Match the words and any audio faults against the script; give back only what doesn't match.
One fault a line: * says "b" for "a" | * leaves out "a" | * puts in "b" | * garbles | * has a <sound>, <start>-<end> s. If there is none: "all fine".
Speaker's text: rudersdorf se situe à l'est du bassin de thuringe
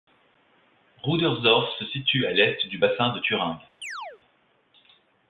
* has a chirp, 3.8-4.2 s